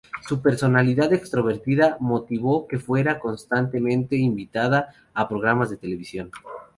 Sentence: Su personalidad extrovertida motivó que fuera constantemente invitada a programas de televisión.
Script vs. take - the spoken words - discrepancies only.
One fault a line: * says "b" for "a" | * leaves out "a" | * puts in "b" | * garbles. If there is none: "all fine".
all fine